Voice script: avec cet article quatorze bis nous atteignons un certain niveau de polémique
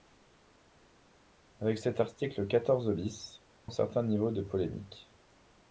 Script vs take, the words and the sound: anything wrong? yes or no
yes